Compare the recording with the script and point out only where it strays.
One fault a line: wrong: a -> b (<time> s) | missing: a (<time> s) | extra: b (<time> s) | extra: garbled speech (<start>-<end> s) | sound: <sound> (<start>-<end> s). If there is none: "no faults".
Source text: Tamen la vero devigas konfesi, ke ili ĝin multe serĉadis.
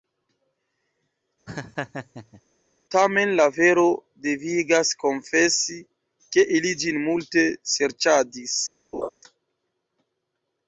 sound: laugh (1.5-2.4 s)
sound: laugh (8.9-9.1 s)